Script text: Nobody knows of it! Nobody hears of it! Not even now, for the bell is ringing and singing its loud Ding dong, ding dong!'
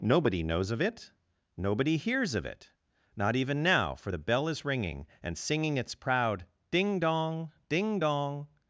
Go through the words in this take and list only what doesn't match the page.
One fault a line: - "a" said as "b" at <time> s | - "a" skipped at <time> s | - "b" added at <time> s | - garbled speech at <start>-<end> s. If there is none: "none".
- "loud" said as "proud" at 6.0 s